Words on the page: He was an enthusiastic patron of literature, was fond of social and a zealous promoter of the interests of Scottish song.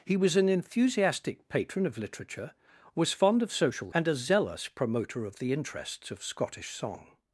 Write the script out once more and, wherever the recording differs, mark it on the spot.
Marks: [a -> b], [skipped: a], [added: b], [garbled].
He was an enthusiastic patron of literature, was fond of social and a zealous promoter of the interests of Scottish song.